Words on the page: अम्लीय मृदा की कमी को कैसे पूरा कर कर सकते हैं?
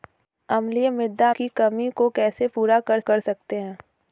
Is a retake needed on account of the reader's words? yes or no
no